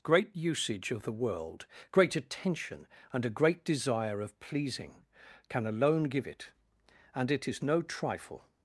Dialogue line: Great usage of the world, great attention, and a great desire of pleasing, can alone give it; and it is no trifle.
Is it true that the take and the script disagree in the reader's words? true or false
false